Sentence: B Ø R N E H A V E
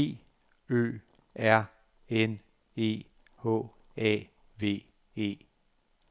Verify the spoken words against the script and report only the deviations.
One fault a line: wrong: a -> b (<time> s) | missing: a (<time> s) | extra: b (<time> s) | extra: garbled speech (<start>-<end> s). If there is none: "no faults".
no faults